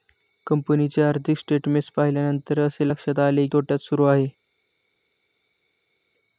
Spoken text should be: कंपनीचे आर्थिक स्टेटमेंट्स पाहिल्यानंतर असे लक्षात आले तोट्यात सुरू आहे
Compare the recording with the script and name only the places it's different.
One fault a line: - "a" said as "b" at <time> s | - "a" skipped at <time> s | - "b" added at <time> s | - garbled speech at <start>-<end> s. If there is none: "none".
none